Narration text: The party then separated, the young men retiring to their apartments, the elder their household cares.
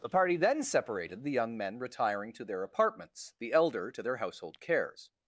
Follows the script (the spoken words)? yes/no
no